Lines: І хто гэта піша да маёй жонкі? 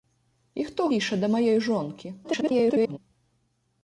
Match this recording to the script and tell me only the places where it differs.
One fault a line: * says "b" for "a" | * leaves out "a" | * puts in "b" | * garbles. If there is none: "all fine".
* leaves out "гэта"
* garbles